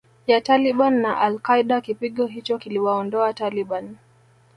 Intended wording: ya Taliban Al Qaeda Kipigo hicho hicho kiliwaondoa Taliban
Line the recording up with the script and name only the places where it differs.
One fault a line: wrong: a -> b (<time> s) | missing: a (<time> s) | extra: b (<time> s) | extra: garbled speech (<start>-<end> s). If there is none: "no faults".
extra: na (1.0 s)
missing: hicho (2.6 s)